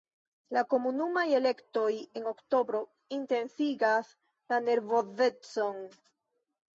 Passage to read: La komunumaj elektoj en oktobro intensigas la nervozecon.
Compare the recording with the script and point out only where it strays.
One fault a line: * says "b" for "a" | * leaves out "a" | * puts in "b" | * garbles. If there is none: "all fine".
all fine